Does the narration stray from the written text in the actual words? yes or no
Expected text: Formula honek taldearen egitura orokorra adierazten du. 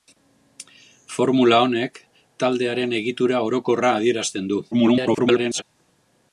yes